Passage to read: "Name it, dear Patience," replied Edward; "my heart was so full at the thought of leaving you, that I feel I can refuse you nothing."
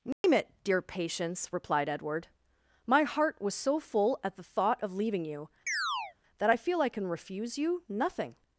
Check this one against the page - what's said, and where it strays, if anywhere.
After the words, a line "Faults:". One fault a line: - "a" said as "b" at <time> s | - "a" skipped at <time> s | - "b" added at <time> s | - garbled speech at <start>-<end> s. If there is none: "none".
"Name it, dear Patience," replied Edward; "my heart was so full at the thought of leaving you, that I feel I can refuse you nothing."
Faults:
none